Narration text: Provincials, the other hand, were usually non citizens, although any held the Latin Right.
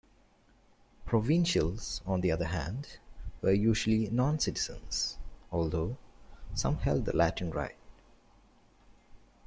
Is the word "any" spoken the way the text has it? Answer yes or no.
no